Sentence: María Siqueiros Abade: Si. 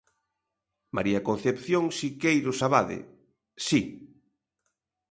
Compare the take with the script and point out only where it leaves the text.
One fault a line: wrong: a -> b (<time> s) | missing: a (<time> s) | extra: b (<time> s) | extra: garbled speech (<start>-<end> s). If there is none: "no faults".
extra: Concepción (1.3 s)